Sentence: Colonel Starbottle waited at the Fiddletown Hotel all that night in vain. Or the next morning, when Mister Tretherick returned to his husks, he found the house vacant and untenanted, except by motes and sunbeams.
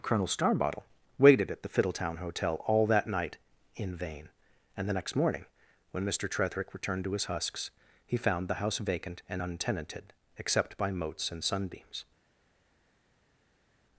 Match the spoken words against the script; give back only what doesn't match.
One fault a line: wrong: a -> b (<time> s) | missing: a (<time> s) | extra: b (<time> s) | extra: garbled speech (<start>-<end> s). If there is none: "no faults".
wrong: Or -> And (4.8 s)